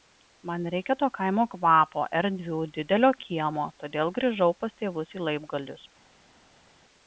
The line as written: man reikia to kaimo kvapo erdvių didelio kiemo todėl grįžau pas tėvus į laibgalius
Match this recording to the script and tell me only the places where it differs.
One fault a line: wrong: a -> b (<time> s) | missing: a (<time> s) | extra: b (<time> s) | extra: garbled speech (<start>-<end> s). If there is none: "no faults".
no faults